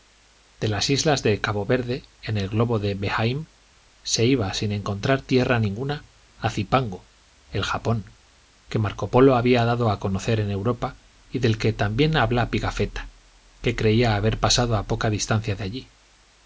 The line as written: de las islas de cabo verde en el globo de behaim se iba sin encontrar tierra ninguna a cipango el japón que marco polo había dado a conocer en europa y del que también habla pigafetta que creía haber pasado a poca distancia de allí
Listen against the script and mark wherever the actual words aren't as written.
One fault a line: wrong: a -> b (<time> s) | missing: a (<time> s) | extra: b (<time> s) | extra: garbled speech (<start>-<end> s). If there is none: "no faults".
no faults